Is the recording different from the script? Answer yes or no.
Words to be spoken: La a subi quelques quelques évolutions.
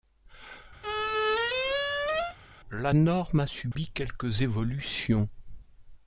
yes